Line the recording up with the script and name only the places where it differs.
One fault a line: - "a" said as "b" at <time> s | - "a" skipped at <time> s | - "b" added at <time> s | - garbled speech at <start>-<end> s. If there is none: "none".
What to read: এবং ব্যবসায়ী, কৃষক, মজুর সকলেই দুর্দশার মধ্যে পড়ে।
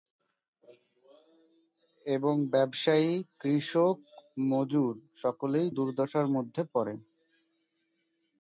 none